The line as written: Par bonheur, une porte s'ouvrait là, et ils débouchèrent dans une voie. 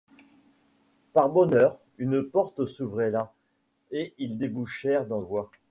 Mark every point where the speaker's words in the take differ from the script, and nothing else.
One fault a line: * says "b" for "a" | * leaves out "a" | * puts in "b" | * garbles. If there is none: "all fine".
* leaves out "une"